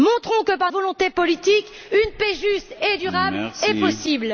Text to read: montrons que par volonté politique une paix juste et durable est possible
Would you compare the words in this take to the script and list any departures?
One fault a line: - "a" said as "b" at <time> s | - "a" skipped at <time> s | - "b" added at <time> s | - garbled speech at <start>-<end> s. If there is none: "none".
none